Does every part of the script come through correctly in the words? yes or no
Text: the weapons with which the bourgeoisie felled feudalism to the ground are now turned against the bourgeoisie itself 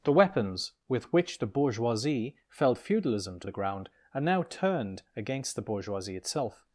yes